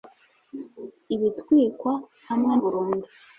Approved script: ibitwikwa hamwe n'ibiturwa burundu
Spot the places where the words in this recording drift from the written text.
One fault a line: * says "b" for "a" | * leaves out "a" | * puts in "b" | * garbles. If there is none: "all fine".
* leaves out "n'ibiturwa"